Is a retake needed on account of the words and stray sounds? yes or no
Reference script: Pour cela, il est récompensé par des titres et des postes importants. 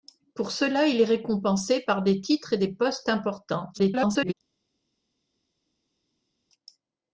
yes